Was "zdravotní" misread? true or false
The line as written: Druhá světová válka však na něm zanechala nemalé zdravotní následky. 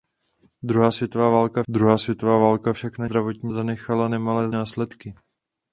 true